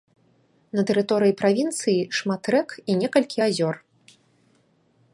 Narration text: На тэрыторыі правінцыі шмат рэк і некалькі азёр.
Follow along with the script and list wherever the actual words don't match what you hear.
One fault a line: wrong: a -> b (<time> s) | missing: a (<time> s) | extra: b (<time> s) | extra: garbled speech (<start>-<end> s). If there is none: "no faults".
no faults